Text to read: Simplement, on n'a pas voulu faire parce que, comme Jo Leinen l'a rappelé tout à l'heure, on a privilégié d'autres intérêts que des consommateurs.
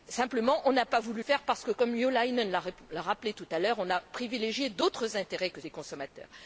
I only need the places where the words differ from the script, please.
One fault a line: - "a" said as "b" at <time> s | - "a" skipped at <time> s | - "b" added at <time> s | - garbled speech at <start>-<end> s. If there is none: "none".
none